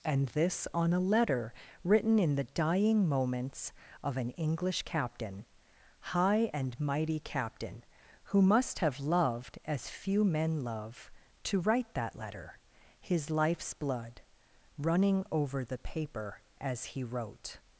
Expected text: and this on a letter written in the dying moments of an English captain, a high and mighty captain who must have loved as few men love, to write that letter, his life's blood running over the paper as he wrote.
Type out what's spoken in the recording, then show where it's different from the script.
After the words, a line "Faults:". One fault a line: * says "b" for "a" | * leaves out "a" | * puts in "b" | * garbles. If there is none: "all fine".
and this on a letter written in the dying moments of an English captain, high and mighty captain who must have loved as few men love, to write that letter, his life's blood running over the paper as he wrote.
Faults:
* leaves out "a"